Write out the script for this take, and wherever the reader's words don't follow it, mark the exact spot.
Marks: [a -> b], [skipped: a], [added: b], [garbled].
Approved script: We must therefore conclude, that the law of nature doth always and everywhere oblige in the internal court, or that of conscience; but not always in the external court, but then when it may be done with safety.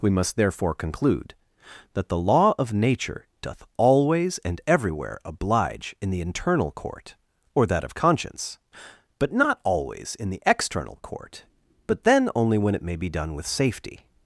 We must therefore conclude, that the law of nature doth always and everywhere oblige in the internal court, or that of conscience; but not always in the external court, but then [added: only] when it may be done with safety.